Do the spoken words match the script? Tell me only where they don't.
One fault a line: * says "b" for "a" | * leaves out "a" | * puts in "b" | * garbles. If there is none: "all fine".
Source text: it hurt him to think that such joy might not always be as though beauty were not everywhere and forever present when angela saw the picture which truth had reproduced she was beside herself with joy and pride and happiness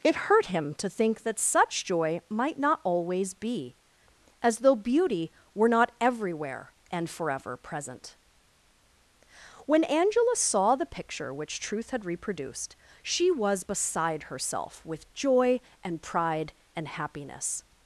all fine